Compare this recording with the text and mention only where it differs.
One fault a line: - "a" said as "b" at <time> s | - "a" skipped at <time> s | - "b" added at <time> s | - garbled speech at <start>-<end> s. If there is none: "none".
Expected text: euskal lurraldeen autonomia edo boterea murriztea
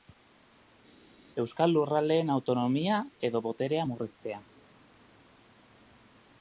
none